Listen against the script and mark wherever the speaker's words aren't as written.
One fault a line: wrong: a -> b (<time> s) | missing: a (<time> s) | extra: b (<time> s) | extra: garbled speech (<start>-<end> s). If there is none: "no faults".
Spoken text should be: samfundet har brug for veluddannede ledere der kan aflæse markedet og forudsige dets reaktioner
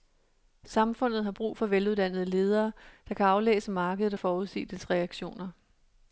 no faults